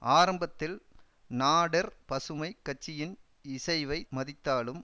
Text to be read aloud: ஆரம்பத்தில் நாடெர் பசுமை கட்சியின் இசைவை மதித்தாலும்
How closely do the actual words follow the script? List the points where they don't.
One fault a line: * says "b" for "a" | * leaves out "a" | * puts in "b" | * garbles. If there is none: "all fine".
all fine